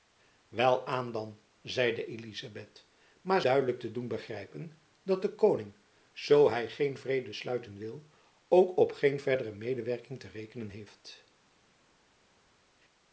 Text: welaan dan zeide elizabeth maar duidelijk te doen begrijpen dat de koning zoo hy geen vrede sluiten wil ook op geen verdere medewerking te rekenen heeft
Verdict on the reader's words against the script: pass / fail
pass